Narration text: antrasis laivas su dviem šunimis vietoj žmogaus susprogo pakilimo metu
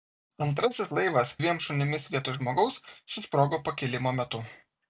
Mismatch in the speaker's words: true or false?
true